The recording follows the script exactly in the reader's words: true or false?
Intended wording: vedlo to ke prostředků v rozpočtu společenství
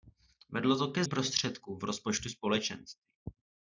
true